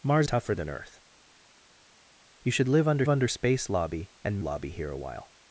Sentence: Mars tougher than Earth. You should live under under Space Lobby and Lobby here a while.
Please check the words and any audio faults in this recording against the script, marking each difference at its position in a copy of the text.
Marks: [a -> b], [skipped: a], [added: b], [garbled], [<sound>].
Mars tougher than Earth. You should live under under Space Lobby and Lobby here a while.